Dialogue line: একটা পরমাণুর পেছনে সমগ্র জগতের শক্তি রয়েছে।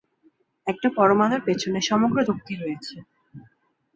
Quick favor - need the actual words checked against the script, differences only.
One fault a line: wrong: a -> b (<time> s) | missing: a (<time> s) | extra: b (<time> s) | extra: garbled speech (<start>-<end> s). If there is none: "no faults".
missing: জগতের (2.2 s)